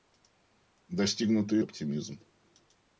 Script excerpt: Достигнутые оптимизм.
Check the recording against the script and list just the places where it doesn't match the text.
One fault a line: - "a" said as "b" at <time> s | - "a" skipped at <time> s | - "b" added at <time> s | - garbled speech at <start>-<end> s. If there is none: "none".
none